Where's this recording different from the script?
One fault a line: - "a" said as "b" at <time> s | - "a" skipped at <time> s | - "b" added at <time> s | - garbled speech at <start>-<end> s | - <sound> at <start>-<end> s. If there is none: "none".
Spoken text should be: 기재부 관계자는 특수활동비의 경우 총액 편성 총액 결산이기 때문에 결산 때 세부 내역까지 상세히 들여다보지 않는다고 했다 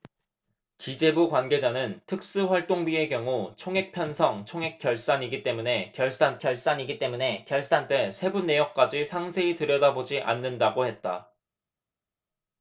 - "결산이기 때문에 결산" added at 6.4 s